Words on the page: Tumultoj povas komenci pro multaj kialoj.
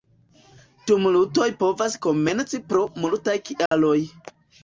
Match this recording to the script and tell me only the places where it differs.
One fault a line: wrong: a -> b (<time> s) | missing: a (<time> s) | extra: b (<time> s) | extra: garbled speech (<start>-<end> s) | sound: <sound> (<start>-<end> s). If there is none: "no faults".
sound: dropout (3.7-3.7 s)